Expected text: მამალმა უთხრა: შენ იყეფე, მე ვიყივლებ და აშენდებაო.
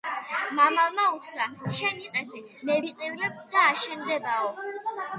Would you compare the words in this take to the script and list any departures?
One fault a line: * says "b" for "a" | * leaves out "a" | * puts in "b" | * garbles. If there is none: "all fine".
all fine